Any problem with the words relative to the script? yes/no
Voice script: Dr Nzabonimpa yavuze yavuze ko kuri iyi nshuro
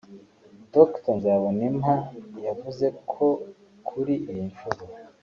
yes